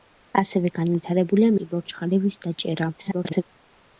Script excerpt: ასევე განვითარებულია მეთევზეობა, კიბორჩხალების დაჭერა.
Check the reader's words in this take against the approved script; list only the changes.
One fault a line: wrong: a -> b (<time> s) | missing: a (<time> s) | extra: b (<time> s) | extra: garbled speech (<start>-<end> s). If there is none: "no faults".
missing: მეთევზეობა (1.5 s)
extra: garbled speech (3.0-3.4 s)